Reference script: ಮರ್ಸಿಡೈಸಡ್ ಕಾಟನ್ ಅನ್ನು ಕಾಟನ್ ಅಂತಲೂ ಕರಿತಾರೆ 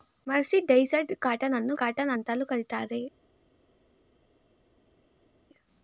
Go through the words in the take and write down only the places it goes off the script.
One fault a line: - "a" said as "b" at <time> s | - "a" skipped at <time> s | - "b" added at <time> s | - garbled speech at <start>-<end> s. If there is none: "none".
none